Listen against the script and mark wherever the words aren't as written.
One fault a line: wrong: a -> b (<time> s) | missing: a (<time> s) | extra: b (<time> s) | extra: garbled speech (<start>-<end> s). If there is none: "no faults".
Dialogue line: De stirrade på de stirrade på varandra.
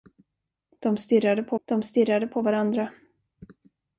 no faults